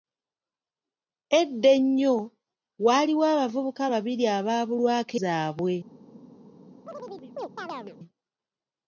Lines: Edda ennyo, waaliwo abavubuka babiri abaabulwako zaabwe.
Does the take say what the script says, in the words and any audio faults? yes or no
no